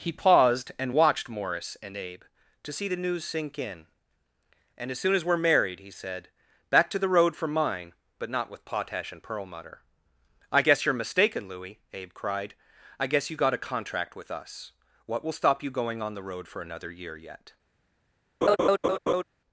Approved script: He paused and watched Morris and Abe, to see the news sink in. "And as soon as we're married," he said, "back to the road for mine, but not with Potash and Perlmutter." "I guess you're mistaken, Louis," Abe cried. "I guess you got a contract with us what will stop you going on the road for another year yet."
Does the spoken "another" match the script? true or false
true